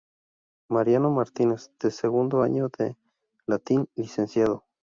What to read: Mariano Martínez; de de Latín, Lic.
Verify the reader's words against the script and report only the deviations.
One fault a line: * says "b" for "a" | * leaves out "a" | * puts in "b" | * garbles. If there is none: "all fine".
* puts in "segundo año"